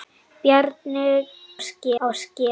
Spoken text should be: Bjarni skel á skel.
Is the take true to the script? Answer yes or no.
yes